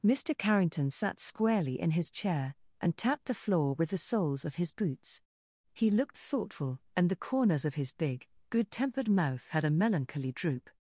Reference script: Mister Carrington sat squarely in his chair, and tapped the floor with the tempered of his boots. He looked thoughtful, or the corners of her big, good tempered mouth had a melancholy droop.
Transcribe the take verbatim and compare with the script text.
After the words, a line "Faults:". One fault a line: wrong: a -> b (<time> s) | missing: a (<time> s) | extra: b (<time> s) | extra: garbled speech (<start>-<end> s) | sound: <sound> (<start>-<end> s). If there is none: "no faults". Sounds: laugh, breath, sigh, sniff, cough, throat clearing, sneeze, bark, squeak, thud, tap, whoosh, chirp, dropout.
Mister Carrington sat squarely in his chair, and tapped the floor with the soles of his boots. He looked thoughtful, and the corners of his big, good tempered mouth had a melancholy droop.
Faults:
wrong: tempered -> soles (4.0 s)
wrong: or -> and (7.0 s)
wrong: her -> his (7.7 s)